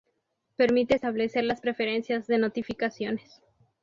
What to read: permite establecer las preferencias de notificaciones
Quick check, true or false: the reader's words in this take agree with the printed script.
true